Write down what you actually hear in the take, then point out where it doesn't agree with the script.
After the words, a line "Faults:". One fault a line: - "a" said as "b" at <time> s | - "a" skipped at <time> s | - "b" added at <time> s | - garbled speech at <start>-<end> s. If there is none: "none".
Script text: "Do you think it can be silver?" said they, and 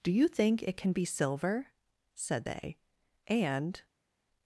"Do you think it can be silver?" said they, and
Faults:
none